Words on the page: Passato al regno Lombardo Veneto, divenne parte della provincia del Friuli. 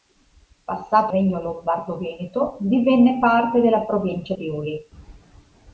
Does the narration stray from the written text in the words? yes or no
yes